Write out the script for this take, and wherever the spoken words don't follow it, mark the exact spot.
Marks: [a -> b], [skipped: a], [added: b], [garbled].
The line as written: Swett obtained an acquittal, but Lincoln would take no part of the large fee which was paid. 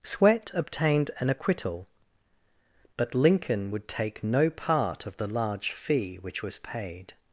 Swett obtained an acquittal, but Lincoln would take no part of the large fee which was paid.